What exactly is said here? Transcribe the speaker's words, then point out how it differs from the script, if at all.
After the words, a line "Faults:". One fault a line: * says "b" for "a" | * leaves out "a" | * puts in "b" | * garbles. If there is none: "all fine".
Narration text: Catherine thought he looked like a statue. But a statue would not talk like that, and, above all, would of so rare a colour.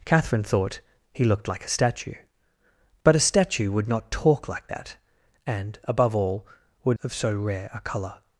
Catherine thought he looked like a statue. But a statue would not talk like that, and, above all, would of so rare a colour.
Faults:
all fine